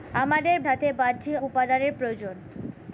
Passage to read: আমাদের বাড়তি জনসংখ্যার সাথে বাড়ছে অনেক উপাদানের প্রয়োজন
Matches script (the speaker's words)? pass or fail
fail